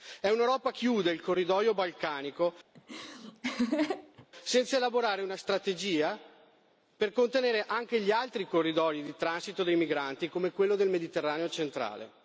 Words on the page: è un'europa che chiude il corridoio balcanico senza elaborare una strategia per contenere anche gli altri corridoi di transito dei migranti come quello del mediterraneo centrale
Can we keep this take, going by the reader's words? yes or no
no